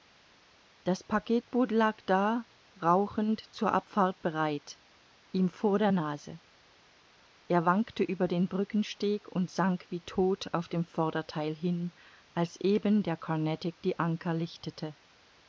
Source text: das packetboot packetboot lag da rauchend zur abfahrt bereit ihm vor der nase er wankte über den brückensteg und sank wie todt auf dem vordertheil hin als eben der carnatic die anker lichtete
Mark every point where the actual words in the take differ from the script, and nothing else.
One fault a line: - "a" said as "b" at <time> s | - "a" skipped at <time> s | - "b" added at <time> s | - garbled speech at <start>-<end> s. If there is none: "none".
- "packetboot" skipped at 1.7 s